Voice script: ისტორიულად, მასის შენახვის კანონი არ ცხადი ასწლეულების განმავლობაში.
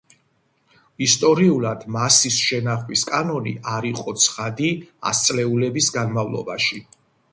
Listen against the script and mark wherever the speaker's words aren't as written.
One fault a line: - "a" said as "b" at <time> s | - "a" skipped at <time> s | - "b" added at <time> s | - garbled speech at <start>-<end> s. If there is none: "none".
- "იყო" added at 3.9 s